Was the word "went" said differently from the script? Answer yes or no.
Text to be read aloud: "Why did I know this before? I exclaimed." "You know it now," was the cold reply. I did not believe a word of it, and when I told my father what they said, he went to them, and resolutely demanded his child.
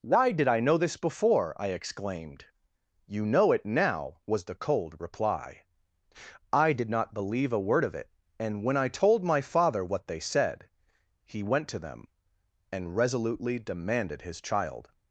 no